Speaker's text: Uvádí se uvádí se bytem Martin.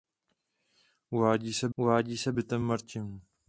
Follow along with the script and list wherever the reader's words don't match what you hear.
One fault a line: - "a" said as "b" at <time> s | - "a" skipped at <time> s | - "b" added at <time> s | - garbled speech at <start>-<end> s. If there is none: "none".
none